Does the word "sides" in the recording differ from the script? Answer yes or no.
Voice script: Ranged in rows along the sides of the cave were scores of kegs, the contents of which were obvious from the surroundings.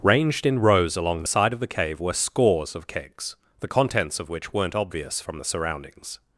yes